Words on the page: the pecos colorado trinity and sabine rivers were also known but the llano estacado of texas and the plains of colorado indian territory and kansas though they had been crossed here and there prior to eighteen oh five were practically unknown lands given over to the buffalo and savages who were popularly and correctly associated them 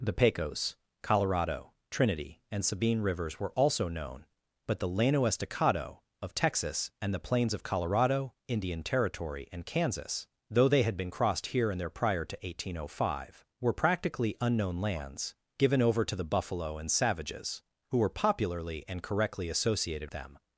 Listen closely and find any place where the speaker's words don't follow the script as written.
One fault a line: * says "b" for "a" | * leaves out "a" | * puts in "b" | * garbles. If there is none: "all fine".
all fine